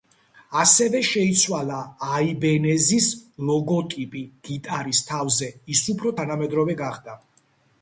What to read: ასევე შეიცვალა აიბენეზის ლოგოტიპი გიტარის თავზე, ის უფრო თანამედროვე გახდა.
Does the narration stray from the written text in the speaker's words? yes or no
no